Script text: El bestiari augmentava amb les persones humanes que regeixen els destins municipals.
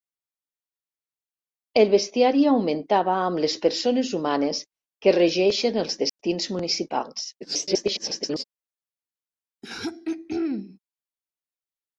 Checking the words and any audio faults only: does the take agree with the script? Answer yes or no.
no